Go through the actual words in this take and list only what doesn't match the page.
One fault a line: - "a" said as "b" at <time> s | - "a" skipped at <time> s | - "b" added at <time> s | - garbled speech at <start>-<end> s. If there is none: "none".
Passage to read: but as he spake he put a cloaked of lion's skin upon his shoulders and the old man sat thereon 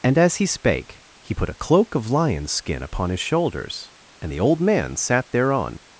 - "but" said as "and" at 0.0 s
- "cloaked" said as "cloak" at 1.5 s